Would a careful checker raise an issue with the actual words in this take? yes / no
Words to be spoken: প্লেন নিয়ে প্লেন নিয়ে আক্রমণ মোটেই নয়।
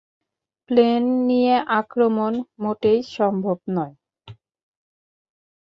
yes